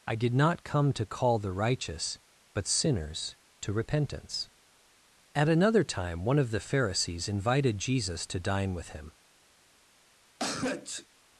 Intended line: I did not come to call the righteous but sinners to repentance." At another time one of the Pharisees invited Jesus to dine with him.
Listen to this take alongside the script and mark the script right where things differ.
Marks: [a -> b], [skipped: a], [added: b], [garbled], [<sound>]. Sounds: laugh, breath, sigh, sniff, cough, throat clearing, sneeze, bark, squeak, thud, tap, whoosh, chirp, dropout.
I did not come to call the righteous but sinners to repentance." At another time one of the Pharisees invited Jesus to dine with him. [sneeze]